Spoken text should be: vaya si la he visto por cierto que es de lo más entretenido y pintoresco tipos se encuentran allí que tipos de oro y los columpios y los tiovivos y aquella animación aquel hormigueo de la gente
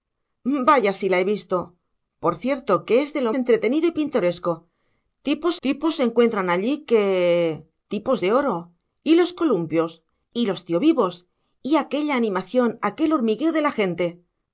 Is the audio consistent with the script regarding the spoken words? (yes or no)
no